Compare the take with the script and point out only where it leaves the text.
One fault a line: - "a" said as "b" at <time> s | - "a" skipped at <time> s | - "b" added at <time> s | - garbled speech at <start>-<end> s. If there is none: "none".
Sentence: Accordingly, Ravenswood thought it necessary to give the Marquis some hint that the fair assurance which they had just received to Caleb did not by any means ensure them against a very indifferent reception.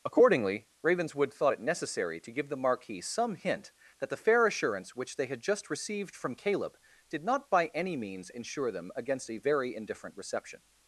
- "to" said as "from" at 6.1 s